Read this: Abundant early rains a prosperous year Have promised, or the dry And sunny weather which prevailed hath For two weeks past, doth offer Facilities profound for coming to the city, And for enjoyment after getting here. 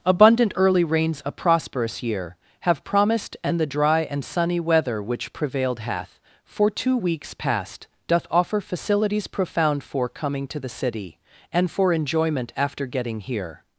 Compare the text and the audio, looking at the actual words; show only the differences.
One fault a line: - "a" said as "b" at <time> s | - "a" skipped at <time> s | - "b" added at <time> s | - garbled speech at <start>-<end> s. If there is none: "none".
- "or" said as "and" at 3.4 s